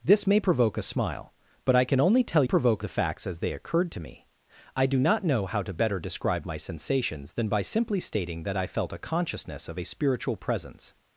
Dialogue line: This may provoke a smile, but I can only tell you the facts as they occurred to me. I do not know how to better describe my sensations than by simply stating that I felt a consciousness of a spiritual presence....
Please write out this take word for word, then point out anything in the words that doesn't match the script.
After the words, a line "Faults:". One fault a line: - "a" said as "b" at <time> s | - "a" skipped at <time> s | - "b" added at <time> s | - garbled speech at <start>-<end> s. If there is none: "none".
This may provoke a smile, but I can only tell provoke the facts as they occurred to me. I do not know how to better describe my sensations than by simply stating that I felt a consciousness of a spiritual presence....
Faults:
- "you" said as "provoke" at 2.4 s